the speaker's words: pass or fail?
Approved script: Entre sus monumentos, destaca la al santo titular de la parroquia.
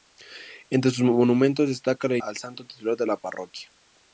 pass